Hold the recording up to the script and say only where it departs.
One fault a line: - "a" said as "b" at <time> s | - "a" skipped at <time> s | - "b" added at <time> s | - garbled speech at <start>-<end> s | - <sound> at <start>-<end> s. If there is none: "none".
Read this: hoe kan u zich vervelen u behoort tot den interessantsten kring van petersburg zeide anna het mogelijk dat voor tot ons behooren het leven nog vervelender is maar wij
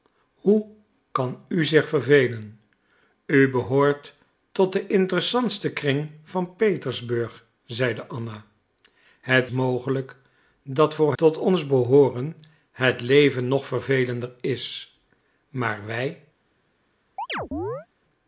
- chirp at 17.2-17.9 s